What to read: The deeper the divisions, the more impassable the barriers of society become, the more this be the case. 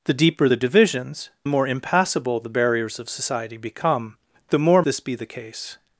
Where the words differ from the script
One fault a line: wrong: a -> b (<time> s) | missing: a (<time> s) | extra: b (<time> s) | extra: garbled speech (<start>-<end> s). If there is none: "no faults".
no faults